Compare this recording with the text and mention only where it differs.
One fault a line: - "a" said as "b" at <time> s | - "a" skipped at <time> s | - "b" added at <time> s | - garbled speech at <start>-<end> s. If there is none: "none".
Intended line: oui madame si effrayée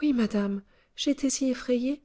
- "j'étais" added at 0.9 s